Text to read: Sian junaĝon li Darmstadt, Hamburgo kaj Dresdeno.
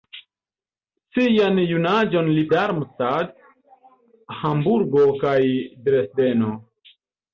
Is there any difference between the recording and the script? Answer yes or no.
no